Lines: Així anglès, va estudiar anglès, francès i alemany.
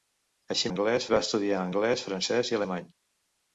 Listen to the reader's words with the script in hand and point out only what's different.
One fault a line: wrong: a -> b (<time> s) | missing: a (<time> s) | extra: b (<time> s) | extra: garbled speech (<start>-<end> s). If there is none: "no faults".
no faults